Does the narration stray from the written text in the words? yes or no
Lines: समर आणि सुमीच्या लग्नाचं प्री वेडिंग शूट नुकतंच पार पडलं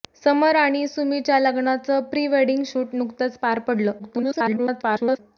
yes